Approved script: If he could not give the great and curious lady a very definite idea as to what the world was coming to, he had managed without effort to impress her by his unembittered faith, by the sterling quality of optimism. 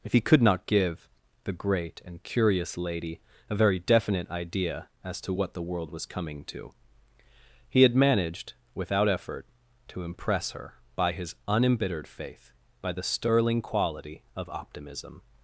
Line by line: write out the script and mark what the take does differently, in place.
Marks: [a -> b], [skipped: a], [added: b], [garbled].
If he could not give the great and curious lady a very definite idea as to what the world was coming to, he had managed without effort to impress her by his unembittered faith, by the sterling quality of optimism.